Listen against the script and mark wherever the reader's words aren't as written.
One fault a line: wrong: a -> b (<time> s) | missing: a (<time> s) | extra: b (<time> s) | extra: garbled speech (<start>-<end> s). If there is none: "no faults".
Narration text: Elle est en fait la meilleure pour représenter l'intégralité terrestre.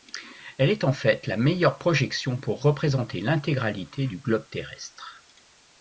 extra: projection (1.8 s)
extra: du globe (4.1 s)